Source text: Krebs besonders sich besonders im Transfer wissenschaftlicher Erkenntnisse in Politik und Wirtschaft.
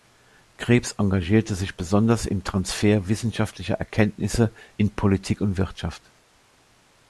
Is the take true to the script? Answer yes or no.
no